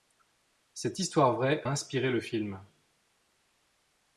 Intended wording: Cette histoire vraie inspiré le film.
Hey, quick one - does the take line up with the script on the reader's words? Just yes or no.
yes